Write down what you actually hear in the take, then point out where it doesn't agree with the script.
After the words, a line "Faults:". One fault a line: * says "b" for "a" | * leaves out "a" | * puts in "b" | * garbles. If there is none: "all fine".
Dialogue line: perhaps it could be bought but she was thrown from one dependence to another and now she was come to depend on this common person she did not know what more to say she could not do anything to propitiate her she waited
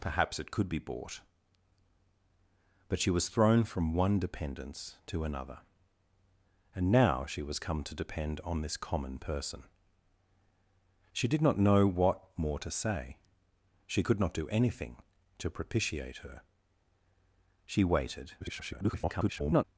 perhaps it could be bought but she was thrown from one dependence to another and now she was come to depend on this common person she did not know what more to say she could not do anything to propitiate her she waited [garbled]
Faults:
* garbles